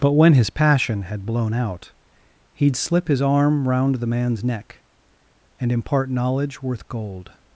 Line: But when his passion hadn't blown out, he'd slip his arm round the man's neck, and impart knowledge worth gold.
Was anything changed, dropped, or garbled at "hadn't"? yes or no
yes